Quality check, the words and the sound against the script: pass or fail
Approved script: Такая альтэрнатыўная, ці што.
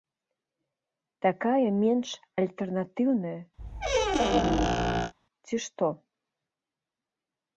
fail